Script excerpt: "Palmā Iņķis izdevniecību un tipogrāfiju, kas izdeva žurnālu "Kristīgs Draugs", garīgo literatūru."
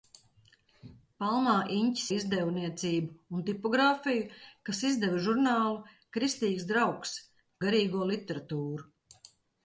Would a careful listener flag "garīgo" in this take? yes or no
no